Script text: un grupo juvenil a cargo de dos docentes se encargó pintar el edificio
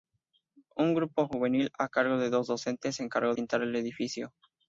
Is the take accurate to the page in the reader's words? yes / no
yes